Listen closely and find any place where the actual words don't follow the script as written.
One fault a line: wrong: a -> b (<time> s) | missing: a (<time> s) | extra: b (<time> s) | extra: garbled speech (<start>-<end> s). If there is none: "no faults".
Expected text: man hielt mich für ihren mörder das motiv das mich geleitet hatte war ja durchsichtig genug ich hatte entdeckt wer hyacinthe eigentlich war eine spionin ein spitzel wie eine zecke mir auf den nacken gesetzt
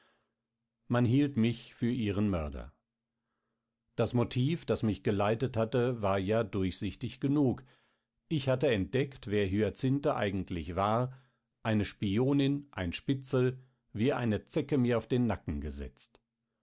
no faults